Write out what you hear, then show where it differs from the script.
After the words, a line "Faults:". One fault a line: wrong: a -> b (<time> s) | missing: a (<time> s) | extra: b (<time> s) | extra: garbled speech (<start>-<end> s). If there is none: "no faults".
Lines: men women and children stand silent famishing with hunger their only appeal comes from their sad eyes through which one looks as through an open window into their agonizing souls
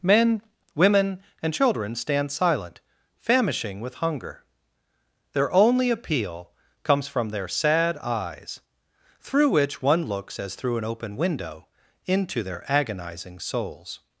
men women and children stand silent famishing with hunger their only appeal comes from their sad eyes through which one looks as through an open window into their agonizing souls
Faults:
no faults